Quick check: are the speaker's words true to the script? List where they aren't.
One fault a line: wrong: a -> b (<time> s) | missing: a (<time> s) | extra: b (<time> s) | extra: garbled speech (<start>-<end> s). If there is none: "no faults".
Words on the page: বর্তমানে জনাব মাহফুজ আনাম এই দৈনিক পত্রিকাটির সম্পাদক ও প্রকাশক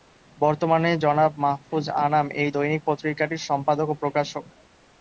no faults